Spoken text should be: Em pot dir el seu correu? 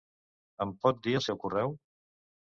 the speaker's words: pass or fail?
pass